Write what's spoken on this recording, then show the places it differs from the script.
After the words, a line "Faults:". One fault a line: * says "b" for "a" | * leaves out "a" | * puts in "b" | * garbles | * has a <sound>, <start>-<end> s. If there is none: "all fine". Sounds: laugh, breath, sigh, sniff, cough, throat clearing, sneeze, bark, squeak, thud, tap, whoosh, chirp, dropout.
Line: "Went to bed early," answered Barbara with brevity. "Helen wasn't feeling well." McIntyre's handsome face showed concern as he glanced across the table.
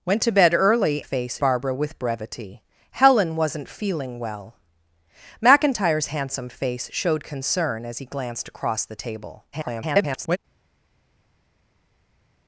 "Went to bed early," face Barbara with brevity. "Helen wasn't feeling well." McIntyre's handsome face showed concern as he glanced across the table. [garbled]
Faults:
* says "face" for "answered"
* garbles